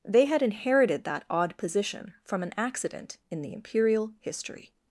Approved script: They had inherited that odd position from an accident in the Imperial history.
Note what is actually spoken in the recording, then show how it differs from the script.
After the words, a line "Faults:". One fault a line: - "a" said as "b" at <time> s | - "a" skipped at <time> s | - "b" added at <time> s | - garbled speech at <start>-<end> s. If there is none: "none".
They had inherited that odd position from an accident in the Imperial history.
Faults:
none